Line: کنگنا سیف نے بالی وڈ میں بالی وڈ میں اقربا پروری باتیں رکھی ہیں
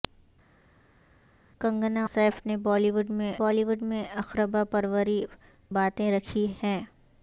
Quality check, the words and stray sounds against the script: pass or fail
pass